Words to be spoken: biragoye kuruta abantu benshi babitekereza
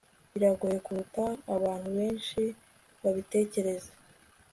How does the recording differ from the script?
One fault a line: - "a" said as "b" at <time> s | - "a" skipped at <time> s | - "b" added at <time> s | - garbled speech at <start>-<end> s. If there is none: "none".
none